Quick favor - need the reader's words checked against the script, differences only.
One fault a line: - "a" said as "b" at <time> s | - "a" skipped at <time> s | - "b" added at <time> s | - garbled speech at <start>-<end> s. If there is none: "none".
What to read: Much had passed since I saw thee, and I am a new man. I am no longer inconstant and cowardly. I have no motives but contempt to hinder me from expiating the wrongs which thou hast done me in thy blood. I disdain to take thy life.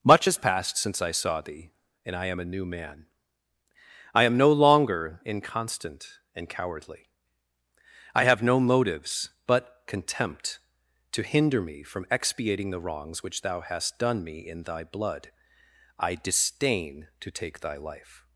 - "had" said as "has" at 0.2 s